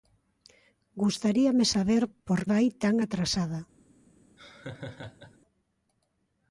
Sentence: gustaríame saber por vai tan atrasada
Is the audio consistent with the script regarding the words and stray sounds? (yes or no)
no